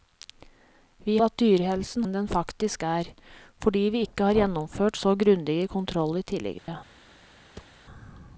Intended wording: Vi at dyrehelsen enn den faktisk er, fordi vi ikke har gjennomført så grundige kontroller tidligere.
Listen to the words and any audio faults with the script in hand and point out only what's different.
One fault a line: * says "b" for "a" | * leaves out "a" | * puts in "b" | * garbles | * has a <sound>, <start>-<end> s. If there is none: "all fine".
* has a dropout, 6.6-6.7 s
* has a thud, 7.5-7.8 s